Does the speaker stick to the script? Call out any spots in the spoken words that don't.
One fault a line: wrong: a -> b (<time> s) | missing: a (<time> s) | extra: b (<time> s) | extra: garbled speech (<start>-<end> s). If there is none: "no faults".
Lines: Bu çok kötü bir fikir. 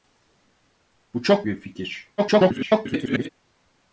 missing: kötü (1.5 s)
extra: garbled speech (2.2-3.3 s)